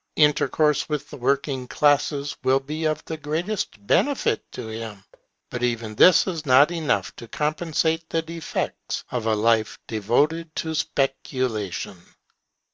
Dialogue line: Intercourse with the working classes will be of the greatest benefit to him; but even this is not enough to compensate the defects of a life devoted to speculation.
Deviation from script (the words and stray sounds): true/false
true